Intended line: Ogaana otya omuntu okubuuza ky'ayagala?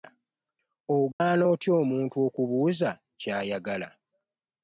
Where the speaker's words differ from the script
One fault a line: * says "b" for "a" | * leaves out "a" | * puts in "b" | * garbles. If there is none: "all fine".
all fine